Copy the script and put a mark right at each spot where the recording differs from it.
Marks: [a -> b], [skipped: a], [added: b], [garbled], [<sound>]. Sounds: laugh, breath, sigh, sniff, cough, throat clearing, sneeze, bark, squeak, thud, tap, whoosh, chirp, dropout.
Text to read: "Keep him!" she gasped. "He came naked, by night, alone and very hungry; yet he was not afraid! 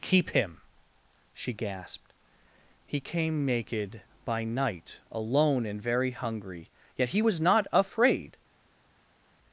"Keep him!" she gasped. "He came naked, by night, alone and very hungry; yet he was not afraid!